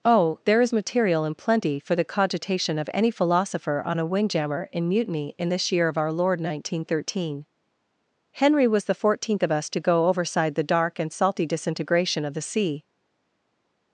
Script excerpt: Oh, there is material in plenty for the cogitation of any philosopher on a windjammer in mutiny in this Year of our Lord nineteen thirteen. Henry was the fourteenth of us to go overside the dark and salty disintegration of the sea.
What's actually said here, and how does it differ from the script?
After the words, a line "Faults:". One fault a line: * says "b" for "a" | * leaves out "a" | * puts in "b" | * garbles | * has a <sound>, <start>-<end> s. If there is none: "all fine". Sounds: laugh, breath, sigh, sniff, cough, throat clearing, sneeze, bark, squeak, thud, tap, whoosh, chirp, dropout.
Oh, there is material in plenty for the cogitation of any philosopher on a windjammer in mutiny in this Year of our Lord nineteen thirteen. Henry was the fourteenth of us to go overside the dark and salty disintegration of the sea.
Faults:
all fine